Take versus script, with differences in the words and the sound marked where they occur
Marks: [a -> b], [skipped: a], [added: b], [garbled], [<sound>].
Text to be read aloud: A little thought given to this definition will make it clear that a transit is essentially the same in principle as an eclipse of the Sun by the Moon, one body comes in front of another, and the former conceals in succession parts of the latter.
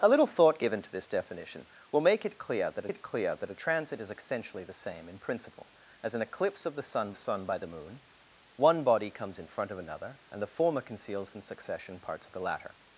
A little thought given to this definition will make it clear that [added: it clear that] a transit is essentially the same in principle as an eclipse of the Sun [added: Sun] by the Moon, one body comes in front of another, and the former conceals in succession parts of the latter.